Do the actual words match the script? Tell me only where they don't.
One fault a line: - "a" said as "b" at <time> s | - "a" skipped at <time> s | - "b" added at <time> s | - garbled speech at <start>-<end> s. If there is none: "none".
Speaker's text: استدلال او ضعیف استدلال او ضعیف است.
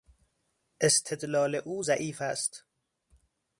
- "استدلال او ضعیف" skipped at 2.2 s